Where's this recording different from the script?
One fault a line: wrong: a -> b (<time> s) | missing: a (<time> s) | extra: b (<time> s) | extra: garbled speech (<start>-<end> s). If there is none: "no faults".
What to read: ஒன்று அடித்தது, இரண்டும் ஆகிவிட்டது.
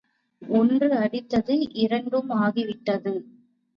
no faults